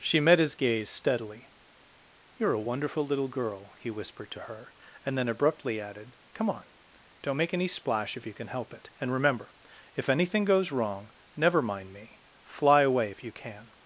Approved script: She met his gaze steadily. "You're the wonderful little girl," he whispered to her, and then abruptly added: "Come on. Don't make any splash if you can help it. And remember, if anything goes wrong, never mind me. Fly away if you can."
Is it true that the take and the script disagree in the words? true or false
true